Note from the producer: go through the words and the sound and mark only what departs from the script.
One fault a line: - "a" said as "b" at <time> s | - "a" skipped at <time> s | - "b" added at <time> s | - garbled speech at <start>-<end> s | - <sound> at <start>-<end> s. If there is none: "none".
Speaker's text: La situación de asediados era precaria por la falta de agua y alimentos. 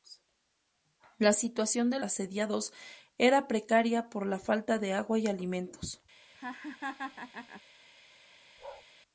- laugh at 6.3-7.6 s
- bark at 8.6-8.8 s